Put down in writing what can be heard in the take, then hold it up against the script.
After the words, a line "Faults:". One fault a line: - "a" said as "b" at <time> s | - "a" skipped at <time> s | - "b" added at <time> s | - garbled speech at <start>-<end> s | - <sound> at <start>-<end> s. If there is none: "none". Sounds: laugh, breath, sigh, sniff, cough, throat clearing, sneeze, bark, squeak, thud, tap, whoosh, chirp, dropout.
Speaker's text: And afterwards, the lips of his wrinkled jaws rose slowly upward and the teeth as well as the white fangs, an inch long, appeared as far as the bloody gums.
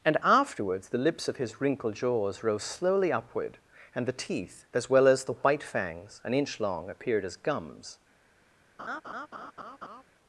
And afterwards, the lips of his wrinkled jaws rose slowly upward and the teeth as well as the white fangs, an inch long, appeared as gums.
Faults:
- "far as the bloody" skipped at 7.4 s
- laugh at 8.8-10.0 s